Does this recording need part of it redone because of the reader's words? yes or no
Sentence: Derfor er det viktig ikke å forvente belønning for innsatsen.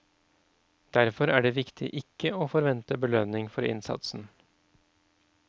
no